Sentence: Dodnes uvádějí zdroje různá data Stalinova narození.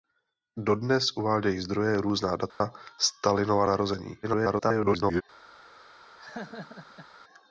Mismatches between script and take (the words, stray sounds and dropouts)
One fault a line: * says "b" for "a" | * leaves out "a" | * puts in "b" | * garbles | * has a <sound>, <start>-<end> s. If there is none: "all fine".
* has a dropout, 2.5-2.6 s
* garbles
* has a laugh, 6.2-7.1 s